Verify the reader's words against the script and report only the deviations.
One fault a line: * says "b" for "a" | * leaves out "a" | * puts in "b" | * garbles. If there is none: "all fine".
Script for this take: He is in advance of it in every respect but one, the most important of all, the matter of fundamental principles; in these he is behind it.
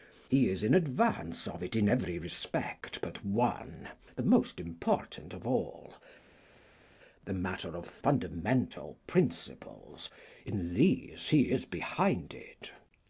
all fine